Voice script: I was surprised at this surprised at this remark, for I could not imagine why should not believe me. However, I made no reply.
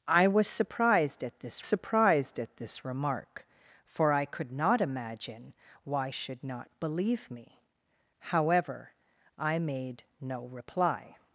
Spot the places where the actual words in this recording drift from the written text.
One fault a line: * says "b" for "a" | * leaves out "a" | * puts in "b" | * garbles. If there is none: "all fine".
all fine